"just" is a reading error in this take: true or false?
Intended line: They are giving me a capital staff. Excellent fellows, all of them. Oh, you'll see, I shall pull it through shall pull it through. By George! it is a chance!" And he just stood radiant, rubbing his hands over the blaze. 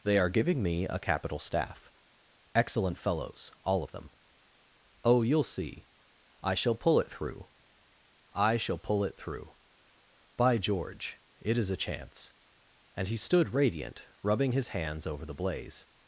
true